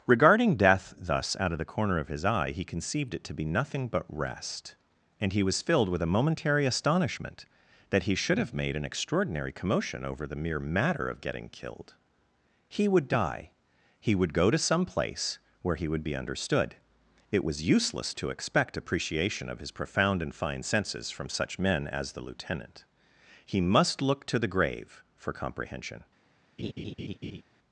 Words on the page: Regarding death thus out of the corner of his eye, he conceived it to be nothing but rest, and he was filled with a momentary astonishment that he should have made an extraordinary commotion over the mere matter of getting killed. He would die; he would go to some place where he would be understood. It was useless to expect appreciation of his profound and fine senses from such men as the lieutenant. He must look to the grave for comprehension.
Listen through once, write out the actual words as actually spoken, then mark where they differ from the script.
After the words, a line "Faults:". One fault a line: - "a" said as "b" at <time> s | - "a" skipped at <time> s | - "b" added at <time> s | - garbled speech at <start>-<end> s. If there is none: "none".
Regarding death thus out of the corner of his eye, he conceived it to be nothing but rest, and he was filled with a momentary astonishment that he should have made an extraordinary commotion over the mere matter of getting killed. He would die; he would go to some place where he would be understood. It was useless to expect appreciation of his profound and fine senses from such men as the lieutenant. He must look to the grave for comprehension.
Faults:
none